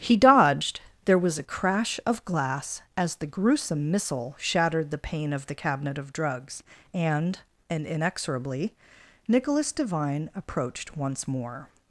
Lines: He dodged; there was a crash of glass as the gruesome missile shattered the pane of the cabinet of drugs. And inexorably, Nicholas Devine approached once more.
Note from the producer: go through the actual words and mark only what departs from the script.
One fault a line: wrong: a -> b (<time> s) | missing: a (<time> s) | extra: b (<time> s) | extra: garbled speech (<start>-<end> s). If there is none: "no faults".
extra: And (7.7 s)